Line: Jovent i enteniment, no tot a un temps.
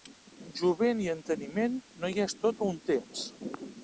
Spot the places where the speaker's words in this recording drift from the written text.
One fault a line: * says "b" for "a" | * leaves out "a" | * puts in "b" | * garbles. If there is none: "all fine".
* puts in "hi és"